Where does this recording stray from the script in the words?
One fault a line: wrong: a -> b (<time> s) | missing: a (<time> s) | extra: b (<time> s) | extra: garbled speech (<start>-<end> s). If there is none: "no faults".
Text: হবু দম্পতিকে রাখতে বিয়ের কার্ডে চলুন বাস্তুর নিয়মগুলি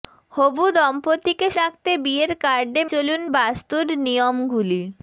no faults